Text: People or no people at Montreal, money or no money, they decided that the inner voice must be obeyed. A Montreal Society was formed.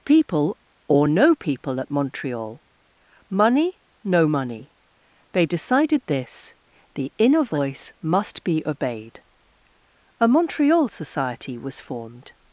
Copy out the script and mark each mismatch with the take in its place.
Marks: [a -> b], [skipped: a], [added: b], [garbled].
People or no people at Montreal, money [skipped: or] no money, they decided [that -> this] the inner voice must be obeyed. A Montreal Society was formed.